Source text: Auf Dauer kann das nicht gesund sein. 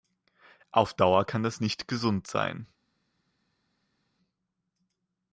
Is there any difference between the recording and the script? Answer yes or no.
no